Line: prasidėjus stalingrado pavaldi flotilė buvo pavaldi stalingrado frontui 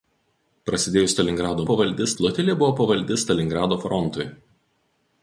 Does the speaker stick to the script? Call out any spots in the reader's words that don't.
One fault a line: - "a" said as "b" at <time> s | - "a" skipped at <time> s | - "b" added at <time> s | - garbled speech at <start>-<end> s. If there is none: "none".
none